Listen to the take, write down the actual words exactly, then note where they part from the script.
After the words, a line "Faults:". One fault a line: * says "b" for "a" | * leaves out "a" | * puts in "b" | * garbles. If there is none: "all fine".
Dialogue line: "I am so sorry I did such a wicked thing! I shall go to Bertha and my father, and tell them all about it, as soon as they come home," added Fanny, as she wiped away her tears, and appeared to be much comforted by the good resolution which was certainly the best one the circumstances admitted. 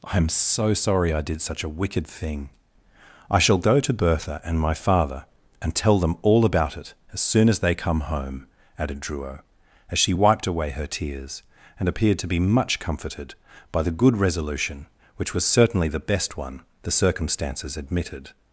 "I am so sorry I did such a wicked thing! I shall go to Bertha and my father, and tell them all about it, as soon as they come home," added Druo, as she wiped away her tears, and appeared to be much comforted by the good resolution which was certainly the best one the circumstances admitted.
Faults:
* says "Druo" for "Fanny"